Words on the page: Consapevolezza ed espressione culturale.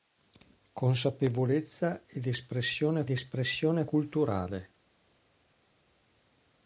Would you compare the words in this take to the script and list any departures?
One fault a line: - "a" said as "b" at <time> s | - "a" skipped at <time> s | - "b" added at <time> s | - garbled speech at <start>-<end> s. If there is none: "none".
- "espressione" added at 3.1 s